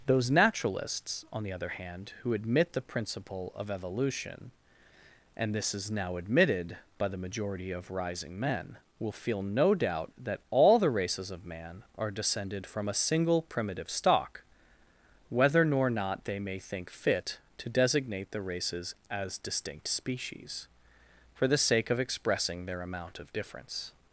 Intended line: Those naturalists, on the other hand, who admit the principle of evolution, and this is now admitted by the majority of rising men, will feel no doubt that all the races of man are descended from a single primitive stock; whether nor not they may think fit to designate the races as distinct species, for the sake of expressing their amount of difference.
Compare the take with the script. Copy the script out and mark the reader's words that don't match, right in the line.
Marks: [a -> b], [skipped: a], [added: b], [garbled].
Those naturalists, on the other hand, who admit the principle of evolution, and this is now admitted by the majority of rising men, will feel no doubt that all the races of man are descended from a single primitive stock; whether nor not they may think fit to designate the races as distinct species, for the sake of expressing their amount of difference.